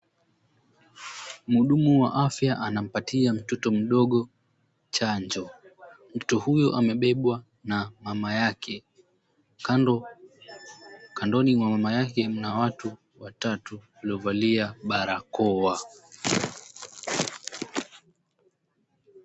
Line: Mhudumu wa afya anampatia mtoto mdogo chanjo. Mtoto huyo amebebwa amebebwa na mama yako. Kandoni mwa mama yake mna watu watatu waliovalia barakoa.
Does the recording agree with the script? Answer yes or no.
no